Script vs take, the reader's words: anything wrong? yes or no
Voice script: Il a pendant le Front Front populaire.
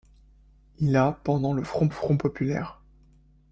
no